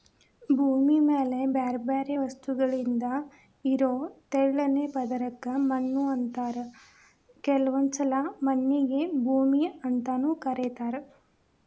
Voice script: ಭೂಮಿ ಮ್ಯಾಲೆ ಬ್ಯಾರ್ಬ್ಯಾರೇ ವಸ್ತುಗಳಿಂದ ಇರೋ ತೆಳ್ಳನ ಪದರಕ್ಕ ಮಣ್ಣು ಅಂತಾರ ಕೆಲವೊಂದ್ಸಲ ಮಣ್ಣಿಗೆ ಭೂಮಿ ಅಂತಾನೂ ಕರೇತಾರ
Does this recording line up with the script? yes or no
yes